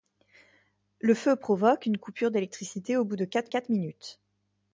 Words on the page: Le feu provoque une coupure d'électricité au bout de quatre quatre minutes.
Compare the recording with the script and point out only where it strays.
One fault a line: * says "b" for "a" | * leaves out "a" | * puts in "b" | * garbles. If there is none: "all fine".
all fine